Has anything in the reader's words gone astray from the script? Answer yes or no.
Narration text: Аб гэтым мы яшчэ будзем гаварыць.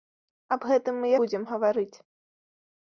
yes